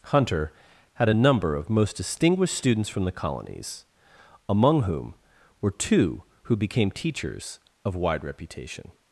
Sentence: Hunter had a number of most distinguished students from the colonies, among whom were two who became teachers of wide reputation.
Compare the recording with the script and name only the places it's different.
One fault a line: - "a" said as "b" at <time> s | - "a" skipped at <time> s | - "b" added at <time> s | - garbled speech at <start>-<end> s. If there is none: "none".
none